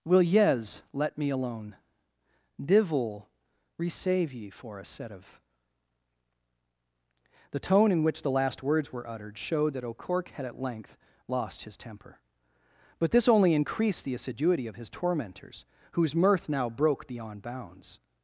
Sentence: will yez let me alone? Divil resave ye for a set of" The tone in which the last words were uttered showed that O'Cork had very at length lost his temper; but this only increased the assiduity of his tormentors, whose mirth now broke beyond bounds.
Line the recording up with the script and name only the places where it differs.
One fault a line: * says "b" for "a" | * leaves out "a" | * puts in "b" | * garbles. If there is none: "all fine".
* leaves out "very"